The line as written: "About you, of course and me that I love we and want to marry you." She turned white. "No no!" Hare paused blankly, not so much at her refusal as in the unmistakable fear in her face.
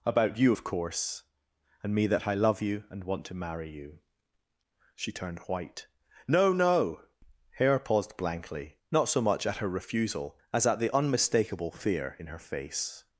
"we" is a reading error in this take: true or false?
true